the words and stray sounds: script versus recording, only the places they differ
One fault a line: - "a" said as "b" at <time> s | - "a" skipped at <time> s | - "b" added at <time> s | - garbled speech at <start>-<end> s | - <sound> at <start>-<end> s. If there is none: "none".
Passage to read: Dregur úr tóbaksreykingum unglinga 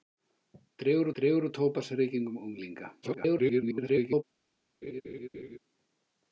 - "dregur" added at 1.2 s
- garbled speech at 3.0-4.2 s
- laugh at 4.8-5.6 s